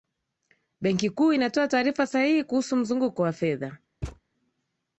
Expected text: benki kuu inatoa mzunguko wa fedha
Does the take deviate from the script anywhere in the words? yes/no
yes